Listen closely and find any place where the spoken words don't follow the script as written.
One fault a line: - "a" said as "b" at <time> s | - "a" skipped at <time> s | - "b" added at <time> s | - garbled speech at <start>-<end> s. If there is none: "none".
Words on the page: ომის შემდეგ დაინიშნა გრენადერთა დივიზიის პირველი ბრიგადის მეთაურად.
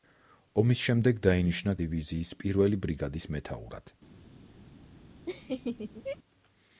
- "გრენადერთა" skipped at 1.8 s